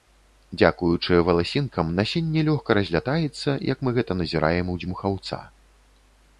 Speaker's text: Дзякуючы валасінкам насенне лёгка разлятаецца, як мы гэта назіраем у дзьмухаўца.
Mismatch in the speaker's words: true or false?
false